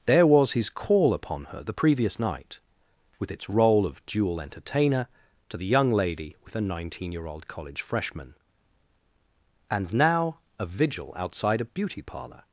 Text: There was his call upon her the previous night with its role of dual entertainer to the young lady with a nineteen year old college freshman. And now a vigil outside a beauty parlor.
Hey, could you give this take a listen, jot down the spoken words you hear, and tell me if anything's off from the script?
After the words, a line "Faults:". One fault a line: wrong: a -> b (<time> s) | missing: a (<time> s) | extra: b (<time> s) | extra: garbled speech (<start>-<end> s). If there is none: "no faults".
There was his call upon her the previous night with its role of dual entertainer to the young lady with a nineteen year old college freshman. And now a vigil outside a beauty parlor.
Faults:
no faults